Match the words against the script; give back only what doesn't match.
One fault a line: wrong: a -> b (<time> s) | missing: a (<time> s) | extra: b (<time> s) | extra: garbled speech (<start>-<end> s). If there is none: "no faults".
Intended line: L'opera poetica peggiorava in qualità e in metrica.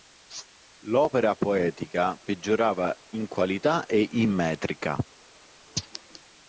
no faults